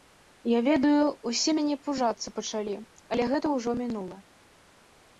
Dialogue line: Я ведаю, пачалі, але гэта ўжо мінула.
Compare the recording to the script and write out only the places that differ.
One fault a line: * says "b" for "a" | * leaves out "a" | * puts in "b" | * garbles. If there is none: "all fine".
* puts in "усе мяне пужацца"